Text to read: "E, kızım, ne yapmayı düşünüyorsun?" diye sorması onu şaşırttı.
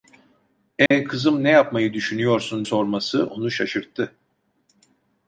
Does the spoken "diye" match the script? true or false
false